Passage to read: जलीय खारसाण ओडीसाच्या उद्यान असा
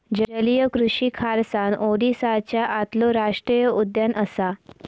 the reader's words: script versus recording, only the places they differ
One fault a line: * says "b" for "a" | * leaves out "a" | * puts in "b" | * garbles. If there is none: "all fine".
* puts in "कृषि"
* puts in "आतलो राष्टीय"